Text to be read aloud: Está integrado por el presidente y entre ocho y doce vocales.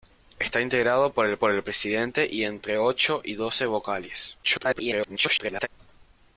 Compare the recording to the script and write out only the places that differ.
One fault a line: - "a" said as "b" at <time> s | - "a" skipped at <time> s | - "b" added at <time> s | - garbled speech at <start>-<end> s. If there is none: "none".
- "por el" added at 1.4 s
- garbled speech at 4.4-5.7 s